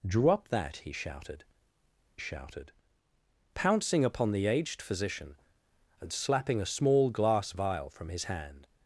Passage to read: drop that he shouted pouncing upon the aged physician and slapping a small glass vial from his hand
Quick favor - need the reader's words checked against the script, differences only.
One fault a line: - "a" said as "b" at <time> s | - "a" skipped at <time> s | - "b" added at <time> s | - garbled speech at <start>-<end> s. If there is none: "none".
- "shouted" added at 2.2 s